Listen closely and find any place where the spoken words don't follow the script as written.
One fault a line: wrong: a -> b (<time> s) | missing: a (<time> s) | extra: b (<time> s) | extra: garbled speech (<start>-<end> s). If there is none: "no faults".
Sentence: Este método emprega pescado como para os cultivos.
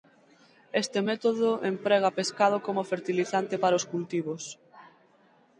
extra: fertilizante (2.9 s)